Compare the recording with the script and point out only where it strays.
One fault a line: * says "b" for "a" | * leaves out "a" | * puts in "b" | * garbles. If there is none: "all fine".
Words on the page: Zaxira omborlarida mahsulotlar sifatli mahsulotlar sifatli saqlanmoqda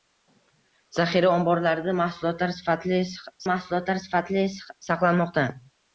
all fine